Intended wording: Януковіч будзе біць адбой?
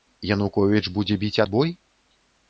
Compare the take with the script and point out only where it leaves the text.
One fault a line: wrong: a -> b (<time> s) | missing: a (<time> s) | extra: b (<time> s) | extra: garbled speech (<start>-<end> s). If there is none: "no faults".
no faults